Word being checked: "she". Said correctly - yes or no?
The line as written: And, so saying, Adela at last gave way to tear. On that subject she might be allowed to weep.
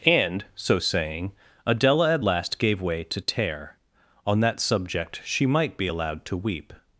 yes